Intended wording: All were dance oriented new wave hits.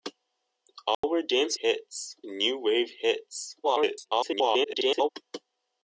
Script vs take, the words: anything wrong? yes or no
yes